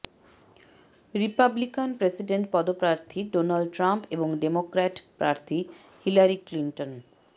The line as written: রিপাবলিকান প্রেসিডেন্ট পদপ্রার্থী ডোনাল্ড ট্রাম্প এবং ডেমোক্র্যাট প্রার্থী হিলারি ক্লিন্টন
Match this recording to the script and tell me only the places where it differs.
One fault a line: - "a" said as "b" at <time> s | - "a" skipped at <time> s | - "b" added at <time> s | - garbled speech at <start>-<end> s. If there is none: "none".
none